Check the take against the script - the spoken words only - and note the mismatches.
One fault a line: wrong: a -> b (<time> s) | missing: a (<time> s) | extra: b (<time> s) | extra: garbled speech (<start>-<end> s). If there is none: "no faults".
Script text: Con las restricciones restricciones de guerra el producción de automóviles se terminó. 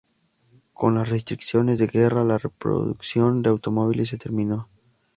missing: restricciones (1.8 s)
wrong: el -> la (2.2 s)